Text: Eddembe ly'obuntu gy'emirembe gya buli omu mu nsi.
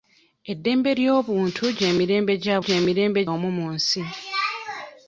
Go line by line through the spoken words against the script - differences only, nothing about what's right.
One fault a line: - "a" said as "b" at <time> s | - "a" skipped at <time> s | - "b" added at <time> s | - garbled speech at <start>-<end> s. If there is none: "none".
- "buli" said as "gy'emirembe" at 2.6 s